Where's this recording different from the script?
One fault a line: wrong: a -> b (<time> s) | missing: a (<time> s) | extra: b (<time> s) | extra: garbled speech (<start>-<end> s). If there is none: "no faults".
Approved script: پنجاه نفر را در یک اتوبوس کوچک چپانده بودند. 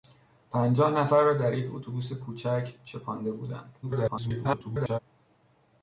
extra: garbled speech (3.8-5.0 s)